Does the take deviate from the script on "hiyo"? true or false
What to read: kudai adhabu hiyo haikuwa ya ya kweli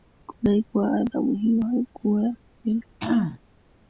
false